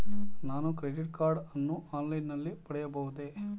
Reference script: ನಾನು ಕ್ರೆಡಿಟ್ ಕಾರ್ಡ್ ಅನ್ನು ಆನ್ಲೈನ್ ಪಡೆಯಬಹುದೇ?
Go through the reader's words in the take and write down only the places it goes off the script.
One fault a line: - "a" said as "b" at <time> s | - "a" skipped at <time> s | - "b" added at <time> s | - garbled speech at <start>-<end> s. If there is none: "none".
- "ನಲ್ಲಿ" added at 2.3 s